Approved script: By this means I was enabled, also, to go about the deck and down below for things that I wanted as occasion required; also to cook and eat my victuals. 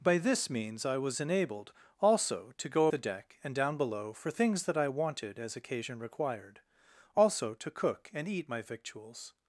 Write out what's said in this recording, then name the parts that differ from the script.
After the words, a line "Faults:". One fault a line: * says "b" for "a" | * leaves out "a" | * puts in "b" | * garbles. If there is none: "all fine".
By this means I was enabled, also, to go the deck and down below for things that I wanted as occasion required; also to cook and eat my victuals.
Faults:
* leaves out "about"